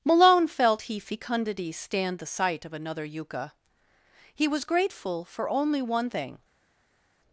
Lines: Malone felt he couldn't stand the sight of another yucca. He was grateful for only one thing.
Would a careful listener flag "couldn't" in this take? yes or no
yes